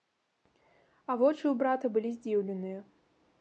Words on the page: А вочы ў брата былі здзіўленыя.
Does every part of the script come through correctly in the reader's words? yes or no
yes